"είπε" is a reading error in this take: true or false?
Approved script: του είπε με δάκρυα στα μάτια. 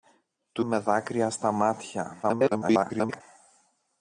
true